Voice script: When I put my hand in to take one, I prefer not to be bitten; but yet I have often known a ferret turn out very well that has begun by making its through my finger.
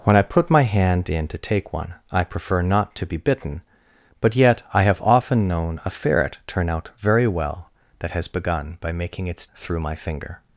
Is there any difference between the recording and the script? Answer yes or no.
no